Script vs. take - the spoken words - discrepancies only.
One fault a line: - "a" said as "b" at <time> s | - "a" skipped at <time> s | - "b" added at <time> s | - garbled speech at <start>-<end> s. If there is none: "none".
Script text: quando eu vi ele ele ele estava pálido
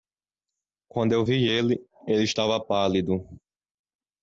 - "ele" skipped at 2.2 s